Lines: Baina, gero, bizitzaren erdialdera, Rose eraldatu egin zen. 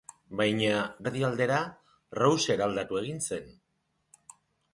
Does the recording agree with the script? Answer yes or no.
no